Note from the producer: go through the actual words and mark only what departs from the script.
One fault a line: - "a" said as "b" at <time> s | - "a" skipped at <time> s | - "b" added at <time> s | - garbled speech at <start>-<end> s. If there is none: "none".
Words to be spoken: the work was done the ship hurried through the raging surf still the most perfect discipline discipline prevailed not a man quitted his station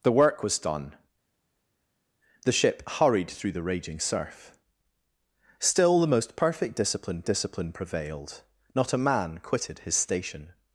none